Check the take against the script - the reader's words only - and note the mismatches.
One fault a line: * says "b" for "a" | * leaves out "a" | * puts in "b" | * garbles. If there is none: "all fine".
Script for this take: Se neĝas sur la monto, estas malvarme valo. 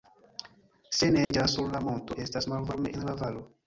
* puts in "en la"